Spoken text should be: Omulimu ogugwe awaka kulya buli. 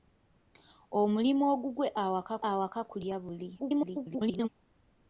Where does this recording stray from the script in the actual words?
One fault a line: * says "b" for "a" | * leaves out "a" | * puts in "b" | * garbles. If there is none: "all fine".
* puts in "awaka"
* garbles